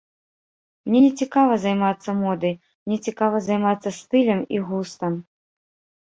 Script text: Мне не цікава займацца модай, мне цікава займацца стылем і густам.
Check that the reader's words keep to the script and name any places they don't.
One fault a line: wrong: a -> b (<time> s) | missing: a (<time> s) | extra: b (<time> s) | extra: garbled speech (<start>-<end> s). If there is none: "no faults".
no faults